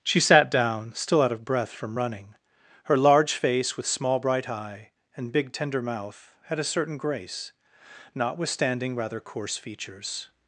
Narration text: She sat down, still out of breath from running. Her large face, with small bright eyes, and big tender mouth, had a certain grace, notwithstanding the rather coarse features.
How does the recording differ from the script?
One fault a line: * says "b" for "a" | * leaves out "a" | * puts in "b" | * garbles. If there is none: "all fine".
* says "eye" for "eyes"
* leaves out "the"